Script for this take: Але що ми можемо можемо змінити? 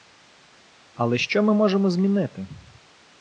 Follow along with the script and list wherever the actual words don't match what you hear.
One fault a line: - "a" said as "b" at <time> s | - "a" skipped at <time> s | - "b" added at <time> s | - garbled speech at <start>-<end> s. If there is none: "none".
- "можемо" skipped at 1.9 s